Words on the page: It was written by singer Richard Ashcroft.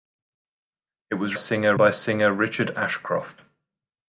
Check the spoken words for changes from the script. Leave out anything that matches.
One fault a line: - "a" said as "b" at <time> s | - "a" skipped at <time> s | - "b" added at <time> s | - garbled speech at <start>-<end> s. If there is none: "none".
- "written" said as "singer" at 1.3 s